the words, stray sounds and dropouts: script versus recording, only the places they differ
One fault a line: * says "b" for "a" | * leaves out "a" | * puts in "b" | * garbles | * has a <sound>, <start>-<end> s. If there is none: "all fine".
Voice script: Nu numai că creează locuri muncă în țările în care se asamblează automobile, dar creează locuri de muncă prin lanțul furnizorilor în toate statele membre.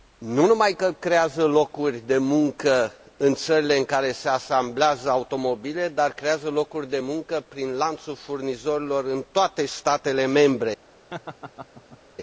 * puts in "de"
* has a laugh, 11.1-12.0 s